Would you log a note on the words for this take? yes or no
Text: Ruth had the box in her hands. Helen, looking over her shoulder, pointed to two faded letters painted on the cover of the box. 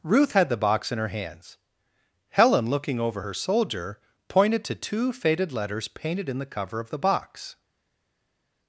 yes